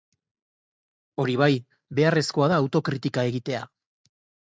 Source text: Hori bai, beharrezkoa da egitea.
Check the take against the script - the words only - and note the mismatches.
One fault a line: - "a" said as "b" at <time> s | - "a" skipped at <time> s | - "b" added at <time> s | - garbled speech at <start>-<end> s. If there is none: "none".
- "autokritika" added at 2.6 s